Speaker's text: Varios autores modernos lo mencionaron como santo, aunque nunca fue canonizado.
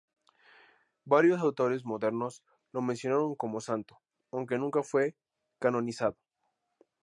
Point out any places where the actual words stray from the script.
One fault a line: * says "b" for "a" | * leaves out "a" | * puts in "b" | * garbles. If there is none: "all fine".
all fine